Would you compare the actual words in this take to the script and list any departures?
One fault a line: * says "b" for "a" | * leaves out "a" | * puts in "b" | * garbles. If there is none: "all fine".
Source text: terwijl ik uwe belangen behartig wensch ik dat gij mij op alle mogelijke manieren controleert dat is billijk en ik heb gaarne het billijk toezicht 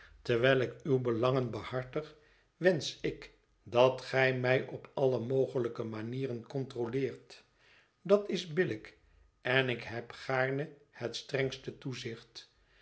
* says "strengste" for "billijk"